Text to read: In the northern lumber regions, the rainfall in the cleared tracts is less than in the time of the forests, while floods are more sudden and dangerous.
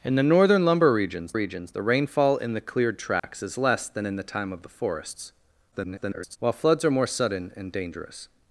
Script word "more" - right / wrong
right